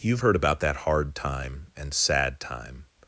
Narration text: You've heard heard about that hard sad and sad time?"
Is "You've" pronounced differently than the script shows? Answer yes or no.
no